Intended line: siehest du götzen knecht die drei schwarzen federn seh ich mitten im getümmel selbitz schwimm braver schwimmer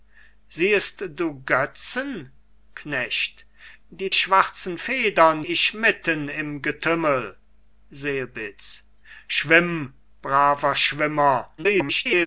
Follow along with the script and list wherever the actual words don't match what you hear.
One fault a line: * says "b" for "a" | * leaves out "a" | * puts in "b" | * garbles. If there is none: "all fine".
* leaves out "drei"
* leaves out "seh"
* garbles